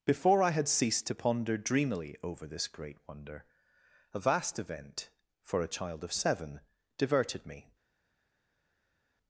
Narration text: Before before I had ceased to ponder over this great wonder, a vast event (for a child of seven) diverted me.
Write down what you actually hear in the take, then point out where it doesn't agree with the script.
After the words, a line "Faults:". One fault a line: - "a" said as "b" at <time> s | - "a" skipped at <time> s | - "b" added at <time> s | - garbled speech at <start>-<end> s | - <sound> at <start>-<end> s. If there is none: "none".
Before I had ceased to ponder dreamily over this great wonder, a vast event (for a child of seven) diverted me.
Faults:
- "before" skipped at 0.4 s
- "dreamily" added at 1.6 s